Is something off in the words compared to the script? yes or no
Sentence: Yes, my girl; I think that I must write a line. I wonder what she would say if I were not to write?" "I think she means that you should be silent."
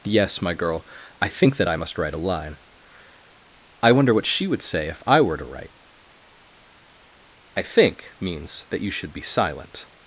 yes